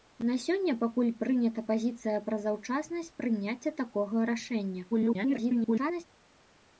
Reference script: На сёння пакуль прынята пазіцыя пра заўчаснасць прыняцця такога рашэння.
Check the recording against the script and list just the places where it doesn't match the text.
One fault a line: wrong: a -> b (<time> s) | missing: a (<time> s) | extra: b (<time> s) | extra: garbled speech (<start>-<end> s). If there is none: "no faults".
extra: garbled speech (4.9-6.0 s)